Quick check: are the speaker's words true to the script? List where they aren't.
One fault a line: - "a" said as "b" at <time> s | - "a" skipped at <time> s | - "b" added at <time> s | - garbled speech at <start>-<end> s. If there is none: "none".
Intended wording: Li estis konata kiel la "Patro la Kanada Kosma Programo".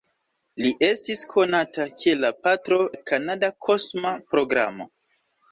none